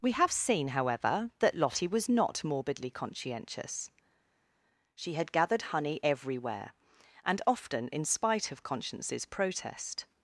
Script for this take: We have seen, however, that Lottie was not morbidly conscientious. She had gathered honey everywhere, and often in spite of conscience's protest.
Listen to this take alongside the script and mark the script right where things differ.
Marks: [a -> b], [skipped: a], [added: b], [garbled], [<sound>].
We have seen, however, that Lottie was not morbidly conscientious. She had gathered honey everywhere, and often in spite of conscience's protest.